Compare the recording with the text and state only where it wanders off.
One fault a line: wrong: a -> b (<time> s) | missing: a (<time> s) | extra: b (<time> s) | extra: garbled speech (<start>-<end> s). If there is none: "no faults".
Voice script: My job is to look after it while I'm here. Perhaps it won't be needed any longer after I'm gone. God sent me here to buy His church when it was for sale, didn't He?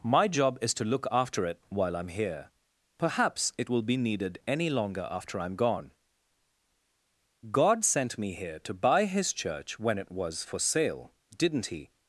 wrong: won't -> will (3.7 s)